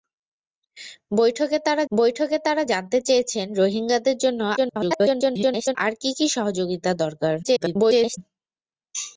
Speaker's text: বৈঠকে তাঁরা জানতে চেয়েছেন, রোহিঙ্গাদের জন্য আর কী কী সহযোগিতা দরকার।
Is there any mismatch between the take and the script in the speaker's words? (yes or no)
yes